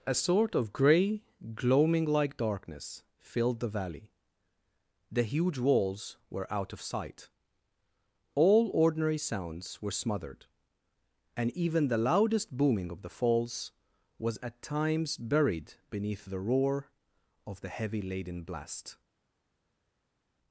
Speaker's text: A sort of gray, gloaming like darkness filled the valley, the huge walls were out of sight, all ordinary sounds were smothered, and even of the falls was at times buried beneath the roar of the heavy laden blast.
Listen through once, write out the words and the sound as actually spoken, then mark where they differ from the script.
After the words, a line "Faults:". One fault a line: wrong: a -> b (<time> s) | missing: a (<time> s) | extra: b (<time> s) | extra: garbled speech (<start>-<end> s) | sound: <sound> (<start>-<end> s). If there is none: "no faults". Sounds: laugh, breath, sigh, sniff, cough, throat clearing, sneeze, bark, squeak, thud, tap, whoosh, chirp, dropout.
A sort of gray, gloaming like darkness filled the valley, the huge walls were out of sight, all ordinary sounds were smothered, and even the loudest booming of the falls was at times buried beneath the roar of the heavy laden blast.
Faults:
extra: the loudest booming (11.9 s)